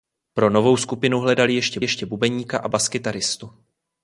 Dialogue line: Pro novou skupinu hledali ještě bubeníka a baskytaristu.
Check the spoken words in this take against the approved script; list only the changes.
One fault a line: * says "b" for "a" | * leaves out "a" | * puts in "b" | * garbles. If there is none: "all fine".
* puts in "ještě"